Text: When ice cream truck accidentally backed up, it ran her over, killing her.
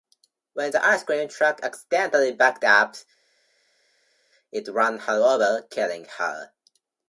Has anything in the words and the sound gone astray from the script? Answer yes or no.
yes